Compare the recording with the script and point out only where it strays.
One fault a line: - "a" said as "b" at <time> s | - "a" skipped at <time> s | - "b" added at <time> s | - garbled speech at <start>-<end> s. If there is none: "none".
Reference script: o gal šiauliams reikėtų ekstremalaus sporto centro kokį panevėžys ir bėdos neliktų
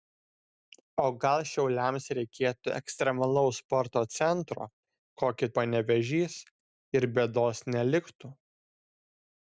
none